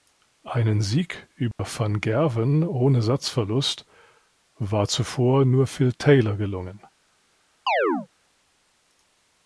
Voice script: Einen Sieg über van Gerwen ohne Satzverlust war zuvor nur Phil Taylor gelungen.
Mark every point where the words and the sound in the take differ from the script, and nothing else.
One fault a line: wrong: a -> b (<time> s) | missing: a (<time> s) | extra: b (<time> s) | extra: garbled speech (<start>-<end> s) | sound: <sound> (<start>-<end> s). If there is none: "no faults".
sound: dropout (1.5-1.6 s)
sound: chirp (7.7-8.1 s)